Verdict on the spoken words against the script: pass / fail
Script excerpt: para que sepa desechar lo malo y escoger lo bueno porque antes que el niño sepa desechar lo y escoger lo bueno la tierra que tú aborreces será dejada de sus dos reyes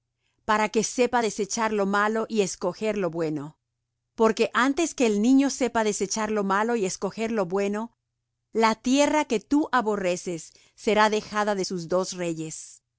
fail